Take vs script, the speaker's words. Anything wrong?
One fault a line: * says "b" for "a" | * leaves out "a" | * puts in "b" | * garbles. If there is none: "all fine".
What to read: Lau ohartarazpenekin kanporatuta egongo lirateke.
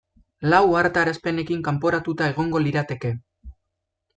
all fine